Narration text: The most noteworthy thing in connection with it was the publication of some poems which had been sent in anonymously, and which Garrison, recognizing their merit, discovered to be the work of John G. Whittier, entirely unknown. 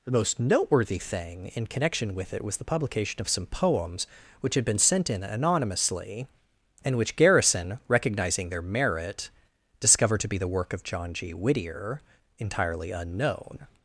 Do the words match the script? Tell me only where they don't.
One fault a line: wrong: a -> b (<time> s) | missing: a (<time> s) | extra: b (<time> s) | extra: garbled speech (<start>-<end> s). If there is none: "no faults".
no faults